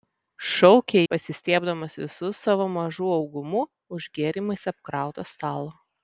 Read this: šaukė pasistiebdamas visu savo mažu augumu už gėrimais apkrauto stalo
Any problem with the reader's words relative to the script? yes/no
no